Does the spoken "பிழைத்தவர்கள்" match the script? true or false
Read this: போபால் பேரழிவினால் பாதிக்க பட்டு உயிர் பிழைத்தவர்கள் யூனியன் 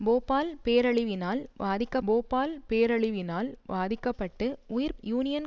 false